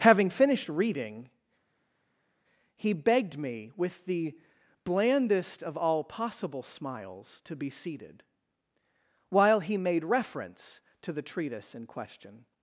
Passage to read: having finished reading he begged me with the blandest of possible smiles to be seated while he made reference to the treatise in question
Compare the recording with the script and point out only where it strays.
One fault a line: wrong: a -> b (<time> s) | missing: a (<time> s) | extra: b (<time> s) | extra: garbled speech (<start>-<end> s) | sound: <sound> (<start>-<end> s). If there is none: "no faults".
extra: all (5.8 s)